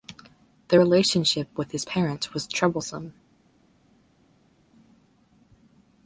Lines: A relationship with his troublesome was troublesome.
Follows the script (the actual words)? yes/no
no